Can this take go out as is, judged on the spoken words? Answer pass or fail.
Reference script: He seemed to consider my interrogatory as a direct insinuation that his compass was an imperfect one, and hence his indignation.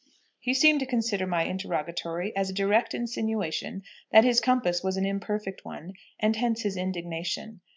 pass